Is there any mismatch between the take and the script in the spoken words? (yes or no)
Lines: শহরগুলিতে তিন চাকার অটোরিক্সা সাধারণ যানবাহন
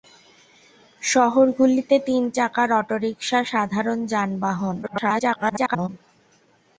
yes